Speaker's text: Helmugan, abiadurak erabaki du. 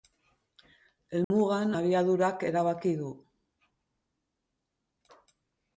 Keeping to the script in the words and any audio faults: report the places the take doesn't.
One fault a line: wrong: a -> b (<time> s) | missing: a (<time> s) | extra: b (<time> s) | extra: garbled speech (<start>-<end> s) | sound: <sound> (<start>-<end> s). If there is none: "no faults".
sound: dropout (1.2-1.3 s)